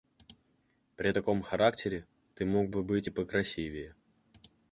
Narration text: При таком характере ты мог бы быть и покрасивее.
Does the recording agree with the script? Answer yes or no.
yes